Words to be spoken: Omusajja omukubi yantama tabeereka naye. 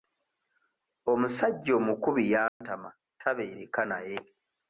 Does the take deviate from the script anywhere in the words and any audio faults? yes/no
yes